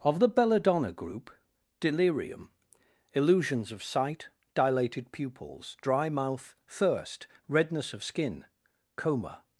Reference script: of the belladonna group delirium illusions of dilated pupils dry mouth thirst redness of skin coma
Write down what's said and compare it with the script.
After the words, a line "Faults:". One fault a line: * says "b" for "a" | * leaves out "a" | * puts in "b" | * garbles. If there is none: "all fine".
of the belladonna group delirium illusions of sight dilated pupils dry mouth thirst redness of skin coma
Faults:
* puts in "sight"